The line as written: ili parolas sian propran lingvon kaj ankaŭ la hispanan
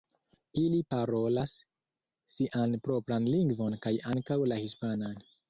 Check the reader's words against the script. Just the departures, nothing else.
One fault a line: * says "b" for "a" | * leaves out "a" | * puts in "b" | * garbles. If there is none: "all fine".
all fine